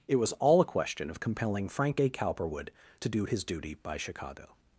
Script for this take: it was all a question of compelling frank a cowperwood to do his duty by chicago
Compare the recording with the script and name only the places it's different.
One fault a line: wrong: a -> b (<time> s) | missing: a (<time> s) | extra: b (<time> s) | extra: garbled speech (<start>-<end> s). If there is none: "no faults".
no faults